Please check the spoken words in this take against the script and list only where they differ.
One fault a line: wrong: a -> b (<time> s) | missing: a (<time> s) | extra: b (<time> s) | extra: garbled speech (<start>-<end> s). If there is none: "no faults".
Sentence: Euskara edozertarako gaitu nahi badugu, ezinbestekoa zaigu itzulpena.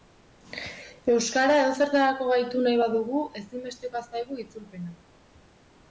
no faults